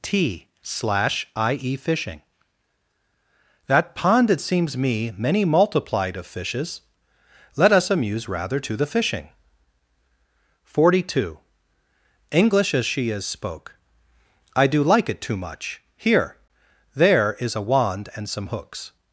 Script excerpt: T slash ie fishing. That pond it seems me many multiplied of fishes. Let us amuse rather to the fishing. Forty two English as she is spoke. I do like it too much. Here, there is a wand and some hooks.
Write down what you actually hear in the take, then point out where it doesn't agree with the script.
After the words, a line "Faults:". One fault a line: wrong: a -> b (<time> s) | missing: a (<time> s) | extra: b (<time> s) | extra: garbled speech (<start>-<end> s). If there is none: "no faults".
T slash ie fishing. That pond it seems me many multiplied of fishes. Let us amuse rather to the fishing. Forty two English as she is spoke. I do like it too much. Here, there is a wand and some hooks.
Faults:
no faults